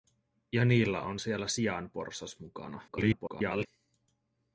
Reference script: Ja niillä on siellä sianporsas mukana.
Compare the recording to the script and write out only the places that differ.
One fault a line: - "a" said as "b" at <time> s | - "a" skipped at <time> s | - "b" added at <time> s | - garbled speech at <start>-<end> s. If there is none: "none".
- garbled speech at 2.9-3.7 s